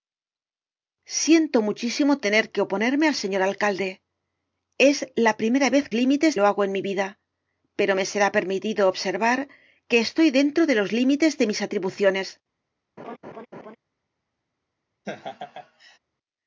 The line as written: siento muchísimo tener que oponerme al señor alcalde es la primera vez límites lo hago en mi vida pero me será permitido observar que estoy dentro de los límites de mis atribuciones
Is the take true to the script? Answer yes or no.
yes